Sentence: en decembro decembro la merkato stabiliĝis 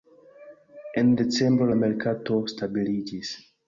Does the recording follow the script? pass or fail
fail